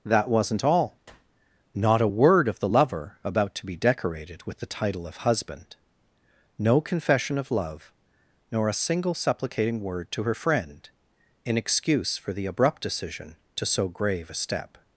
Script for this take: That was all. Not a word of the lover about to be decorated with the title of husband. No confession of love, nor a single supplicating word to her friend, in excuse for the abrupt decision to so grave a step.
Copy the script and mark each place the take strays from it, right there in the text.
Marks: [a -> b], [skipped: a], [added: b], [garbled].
That [was -> wasn't] all. Not a word of the lover about to be decorated with the title of husband. No confession of love, nor a single supplicating word to her friend, in excuse for the abrupt decision to so grave a step.